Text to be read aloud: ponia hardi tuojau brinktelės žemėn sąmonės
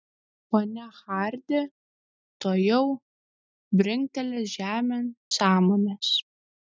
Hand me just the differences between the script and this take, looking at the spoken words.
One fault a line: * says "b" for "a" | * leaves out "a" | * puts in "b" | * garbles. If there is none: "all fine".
all fine